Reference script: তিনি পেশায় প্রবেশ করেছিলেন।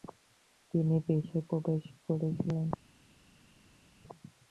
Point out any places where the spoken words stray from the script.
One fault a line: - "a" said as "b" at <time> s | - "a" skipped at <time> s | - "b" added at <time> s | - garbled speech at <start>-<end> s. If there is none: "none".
none